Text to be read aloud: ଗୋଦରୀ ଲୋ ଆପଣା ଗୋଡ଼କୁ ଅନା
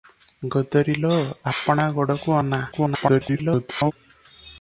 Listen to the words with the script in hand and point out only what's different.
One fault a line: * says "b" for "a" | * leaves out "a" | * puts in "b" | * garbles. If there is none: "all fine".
* garbles